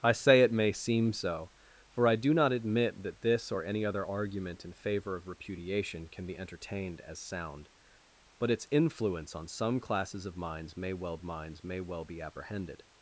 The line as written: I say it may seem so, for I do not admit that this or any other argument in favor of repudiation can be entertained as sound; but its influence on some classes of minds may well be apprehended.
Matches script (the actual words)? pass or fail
fail